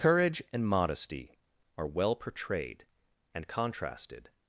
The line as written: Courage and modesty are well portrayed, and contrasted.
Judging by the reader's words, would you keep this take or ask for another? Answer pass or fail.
pass